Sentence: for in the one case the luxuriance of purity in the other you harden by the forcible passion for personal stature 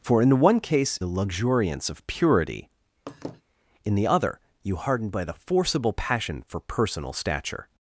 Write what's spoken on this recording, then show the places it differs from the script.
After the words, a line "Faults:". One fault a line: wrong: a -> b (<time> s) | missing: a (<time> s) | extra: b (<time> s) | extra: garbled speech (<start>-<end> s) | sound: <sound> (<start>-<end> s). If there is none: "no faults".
for in the one case the luxuriance of purity in the other you harden by the forcible passion for personal stature
Faults:
sound: laugh (3.1-3.4 s)